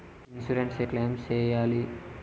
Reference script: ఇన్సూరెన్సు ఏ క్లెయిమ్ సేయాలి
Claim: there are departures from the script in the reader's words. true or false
false